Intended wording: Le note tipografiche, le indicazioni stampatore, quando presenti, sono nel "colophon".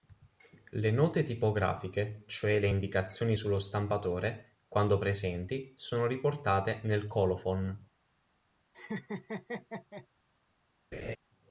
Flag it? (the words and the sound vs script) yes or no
yes